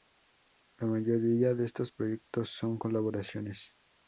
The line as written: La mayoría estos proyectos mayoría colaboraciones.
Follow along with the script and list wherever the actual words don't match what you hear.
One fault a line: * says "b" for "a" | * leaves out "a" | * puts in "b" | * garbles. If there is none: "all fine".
* puts in "de"
* says "son" for "mayoría"